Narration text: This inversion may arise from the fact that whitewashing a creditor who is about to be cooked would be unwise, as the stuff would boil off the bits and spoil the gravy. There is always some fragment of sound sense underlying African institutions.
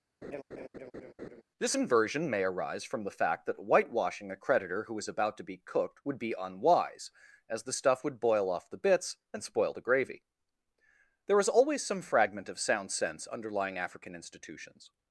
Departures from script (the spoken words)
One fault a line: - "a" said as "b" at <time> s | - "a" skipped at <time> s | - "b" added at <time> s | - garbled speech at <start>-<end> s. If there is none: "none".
none